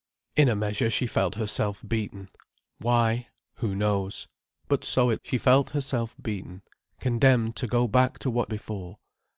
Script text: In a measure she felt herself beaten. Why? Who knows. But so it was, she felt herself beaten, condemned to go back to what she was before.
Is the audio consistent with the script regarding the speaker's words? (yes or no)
no